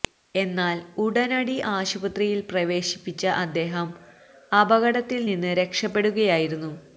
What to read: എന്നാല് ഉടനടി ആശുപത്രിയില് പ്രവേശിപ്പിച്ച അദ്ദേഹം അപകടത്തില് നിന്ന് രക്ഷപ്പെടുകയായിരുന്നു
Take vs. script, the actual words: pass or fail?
pass